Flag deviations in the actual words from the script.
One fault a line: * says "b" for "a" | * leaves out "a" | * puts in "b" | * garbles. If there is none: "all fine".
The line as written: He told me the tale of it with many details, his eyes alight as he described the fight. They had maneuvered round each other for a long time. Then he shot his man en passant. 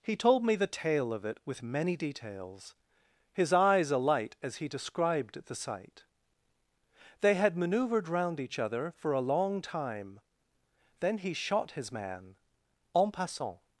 * says "sight" for "fight"